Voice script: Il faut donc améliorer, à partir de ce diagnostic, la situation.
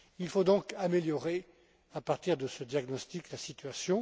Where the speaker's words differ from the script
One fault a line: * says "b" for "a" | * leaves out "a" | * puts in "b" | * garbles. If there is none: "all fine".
all fine